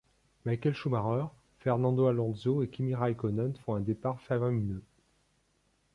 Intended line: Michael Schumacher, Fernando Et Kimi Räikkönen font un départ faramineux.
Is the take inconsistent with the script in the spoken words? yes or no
yes